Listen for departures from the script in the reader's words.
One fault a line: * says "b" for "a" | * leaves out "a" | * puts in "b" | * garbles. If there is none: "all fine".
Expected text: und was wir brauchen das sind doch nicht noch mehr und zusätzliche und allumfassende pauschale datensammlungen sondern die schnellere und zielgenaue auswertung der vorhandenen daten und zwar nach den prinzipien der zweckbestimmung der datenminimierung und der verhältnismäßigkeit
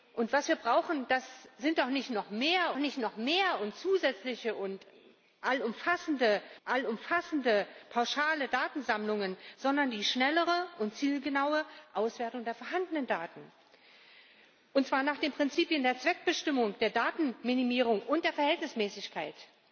* puts in "nicht noch mehr"
* puts in "allumfassende"